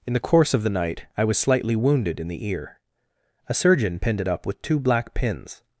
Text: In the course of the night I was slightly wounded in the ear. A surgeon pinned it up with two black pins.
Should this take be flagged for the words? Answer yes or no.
no